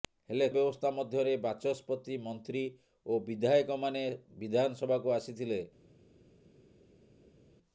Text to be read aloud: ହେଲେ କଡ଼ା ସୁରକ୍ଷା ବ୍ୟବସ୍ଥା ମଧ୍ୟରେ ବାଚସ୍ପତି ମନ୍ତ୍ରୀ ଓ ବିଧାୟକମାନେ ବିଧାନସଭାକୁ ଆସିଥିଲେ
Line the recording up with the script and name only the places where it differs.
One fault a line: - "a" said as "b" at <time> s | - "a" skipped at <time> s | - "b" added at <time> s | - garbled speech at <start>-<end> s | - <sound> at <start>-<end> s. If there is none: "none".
- "କଡ଼ା ସୁରକ୍ଷା" skipped at 0.5 s